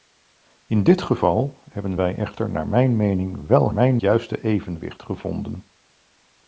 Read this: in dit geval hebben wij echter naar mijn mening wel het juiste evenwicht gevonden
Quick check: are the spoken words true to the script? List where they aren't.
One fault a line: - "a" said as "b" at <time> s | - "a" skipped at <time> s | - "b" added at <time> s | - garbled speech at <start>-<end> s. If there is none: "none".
- "het" said as "mijn" at 3.7 s